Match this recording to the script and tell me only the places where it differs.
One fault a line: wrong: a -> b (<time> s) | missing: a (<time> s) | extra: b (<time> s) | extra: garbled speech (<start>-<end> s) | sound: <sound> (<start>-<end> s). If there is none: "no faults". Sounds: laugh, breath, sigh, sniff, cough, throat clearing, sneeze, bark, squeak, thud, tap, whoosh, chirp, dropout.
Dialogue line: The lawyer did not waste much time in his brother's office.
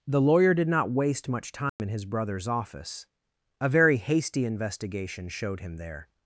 sound: dropout (1.7-1.8 s)
extra: A very hasty investigation showed him there (3.6 s)